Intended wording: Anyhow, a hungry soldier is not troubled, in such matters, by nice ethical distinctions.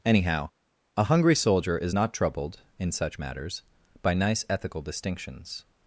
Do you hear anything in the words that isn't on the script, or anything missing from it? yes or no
no